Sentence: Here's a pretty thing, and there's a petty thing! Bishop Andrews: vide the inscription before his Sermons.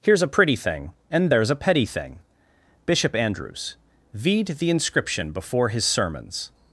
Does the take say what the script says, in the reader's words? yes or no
yes